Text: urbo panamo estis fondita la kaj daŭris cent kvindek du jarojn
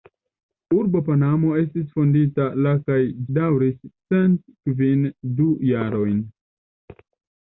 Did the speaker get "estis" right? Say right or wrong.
right